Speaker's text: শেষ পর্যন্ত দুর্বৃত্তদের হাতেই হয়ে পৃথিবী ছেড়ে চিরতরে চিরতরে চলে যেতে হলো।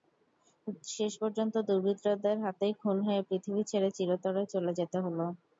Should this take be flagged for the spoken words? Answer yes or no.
yes